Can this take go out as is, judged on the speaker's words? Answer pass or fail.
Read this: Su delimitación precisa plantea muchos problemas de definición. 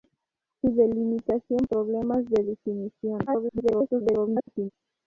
fail